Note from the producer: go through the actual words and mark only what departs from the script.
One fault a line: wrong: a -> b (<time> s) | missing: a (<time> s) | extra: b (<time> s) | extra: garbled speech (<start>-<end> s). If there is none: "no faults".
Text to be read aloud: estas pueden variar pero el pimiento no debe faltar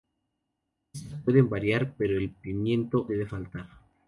missing: no (3.1 s)